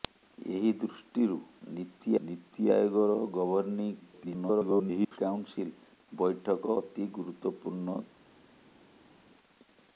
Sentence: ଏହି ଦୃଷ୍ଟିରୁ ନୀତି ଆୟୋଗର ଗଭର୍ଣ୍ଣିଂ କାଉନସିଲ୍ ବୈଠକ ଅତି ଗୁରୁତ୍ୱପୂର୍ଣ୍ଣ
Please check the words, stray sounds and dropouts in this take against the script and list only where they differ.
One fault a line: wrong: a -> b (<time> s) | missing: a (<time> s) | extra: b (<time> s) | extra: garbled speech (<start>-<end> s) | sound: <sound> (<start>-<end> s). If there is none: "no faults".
extra: ନୀତି (2.2 s)
extra: garbled speech (4.0-5.2 s)